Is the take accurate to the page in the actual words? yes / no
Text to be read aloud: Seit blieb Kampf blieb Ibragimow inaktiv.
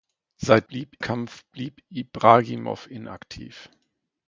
yes